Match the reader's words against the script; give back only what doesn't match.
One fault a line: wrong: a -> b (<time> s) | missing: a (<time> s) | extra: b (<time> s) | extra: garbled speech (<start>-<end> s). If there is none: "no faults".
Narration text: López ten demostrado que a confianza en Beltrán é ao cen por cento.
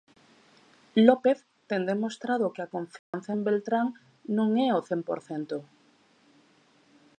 extra: non (4.4 s)